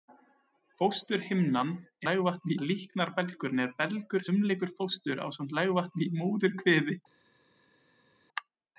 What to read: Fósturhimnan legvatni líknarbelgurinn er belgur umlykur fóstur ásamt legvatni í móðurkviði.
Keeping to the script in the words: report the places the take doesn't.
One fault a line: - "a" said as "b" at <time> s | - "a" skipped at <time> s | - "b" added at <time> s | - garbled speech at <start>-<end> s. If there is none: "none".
none